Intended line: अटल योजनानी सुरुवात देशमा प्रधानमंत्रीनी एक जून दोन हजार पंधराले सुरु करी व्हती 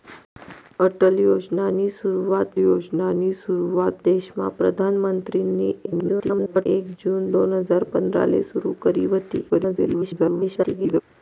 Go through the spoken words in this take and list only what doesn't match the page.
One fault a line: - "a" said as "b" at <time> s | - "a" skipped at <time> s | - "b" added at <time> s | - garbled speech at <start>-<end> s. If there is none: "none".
- "योजनानी सुरुवात" added at 2.6 s
- garbled speech at 5.9-6.7 s
- garbled speech at 9.5-11.0 s